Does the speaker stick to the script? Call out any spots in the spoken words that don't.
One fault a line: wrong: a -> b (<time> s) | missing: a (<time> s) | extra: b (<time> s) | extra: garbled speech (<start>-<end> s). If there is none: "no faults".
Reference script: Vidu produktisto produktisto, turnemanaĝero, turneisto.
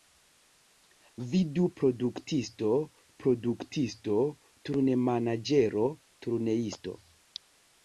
no faults